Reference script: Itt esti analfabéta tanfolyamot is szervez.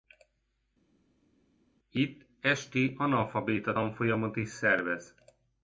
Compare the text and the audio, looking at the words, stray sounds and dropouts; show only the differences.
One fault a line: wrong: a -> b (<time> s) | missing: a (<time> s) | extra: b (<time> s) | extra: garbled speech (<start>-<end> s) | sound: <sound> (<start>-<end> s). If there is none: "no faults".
no faults